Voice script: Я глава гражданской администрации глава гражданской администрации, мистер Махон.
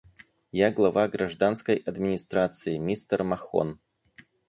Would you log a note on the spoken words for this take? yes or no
yes